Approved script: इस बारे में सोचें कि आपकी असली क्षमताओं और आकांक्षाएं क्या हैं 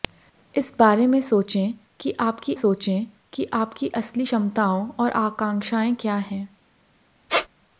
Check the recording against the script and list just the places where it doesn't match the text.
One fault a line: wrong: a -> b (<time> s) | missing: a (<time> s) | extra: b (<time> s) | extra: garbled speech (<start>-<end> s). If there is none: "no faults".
extra: सोचें कि आपकी (2.5 s)